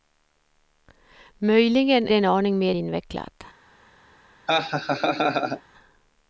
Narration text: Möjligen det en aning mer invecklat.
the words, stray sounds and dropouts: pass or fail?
fail